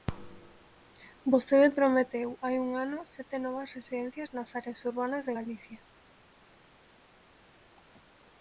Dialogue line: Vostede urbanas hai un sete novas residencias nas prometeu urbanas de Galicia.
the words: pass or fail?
fail